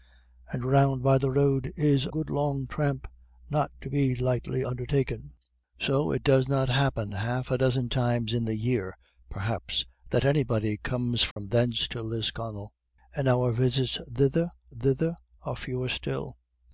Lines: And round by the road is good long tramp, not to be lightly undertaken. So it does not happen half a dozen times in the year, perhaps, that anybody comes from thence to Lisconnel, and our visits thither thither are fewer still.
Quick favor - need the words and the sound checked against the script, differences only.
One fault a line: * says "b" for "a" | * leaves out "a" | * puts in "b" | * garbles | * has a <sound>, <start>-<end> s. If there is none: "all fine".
* has a dropout, 11.3-11.4 s